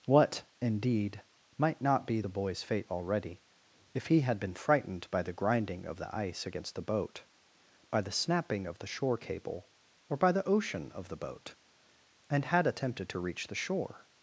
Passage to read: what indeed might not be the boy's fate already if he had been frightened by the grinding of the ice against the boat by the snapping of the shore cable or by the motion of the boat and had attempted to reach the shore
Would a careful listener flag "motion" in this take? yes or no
yes